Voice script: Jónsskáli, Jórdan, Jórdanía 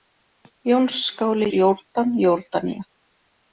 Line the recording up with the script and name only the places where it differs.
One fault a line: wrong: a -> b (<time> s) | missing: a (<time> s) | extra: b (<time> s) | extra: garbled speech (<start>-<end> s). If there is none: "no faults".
no faults